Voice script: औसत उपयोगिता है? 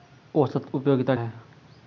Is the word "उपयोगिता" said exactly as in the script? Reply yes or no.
yes